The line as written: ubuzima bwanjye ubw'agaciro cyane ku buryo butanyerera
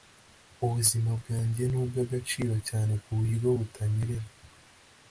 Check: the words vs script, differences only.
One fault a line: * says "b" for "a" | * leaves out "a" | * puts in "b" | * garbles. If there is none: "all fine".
* puts in "ni"